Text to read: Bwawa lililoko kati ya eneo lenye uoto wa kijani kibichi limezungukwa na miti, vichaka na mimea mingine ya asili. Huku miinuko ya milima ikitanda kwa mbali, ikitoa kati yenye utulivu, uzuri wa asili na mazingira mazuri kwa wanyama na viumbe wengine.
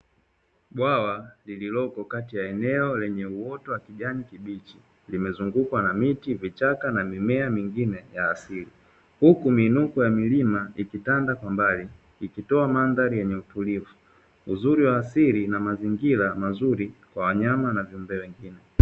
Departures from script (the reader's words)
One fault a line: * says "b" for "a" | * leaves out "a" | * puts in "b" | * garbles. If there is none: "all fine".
* says "mandhari" for "kati"